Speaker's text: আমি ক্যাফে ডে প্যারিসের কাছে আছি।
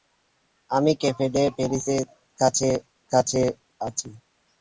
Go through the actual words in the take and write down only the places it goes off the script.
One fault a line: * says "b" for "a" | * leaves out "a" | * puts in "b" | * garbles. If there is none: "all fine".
* puts in "কাছে"